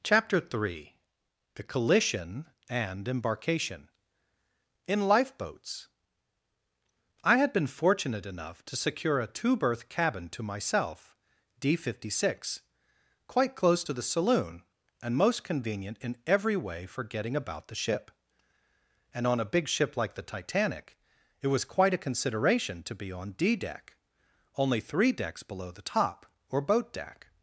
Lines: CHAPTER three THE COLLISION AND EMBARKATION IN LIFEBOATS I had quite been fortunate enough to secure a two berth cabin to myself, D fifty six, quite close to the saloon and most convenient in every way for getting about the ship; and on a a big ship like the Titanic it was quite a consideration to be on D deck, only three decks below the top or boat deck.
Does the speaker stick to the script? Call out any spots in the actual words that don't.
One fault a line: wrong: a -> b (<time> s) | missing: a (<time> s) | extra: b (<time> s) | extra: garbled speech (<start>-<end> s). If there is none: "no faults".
missing: quite (7.5 s)
missing: a (19.5 s)